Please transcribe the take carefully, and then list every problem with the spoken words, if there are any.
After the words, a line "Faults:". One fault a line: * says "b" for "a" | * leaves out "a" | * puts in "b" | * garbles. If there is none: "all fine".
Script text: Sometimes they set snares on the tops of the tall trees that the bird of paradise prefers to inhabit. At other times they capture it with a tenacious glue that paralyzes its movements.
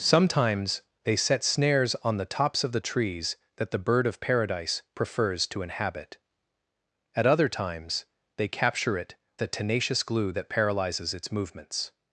Sometimes they set snares on the tops of the trees that the bird of paradise prefers to inhabit. At other times they capture it a tenacious glue that paralyzes its movements.
Faults:
* leaves out "tall"
* leaves out "with"